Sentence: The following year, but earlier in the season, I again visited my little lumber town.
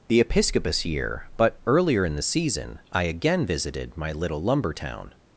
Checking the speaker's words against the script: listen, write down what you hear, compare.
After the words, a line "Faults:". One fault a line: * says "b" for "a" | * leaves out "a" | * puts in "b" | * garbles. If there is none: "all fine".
The episcopus year, but earlier in the season, I again visited my little lumber town.
Faults:
* says "episcopus" for "following"